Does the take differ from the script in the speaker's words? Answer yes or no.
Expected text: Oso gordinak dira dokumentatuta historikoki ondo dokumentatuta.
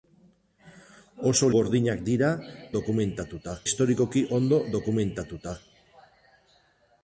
no